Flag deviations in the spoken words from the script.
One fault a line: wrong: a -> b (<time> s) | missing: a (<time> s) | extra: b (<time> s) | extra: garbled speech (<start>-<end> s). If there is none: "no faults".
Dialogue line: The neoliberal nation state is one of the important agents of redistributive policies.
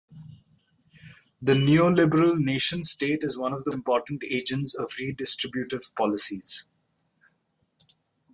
no faults